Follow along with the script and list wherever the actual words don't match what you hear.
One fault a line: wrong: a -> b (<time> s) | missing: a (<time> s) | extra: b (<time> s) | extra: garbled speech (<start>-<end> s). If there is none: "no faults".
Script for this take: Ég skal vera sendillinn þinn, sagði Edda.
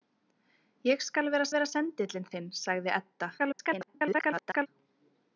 extra: vera (1.6 s)
extra: garbled speech (3.4-4.7 s)